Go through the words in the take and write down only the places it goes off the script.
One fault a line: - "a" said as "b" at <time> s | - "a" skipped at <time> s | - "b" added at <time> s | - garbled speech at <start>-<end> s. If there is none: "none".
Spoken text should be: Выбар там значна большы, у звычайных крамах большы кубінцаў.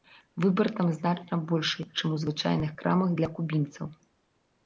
- "чым" added at 2.0 s
- "большы" said as "для" at 3.2 s